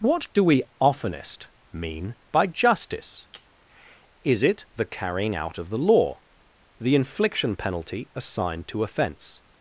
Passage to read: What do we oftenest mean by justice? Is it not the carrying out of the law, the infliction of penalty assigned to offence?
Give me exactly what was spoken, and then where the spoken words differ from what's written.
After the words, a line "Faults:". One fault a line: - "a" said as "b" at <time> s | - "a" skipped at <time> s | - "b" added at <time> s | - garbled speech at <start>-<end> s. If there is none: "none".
What do we oftenest mean by justice? Is it the carrying out of the law, the infliction penalty assigned to offence?
Faults:
- "not" skipped at 4.6 s
- "of" skipped at 7.5 s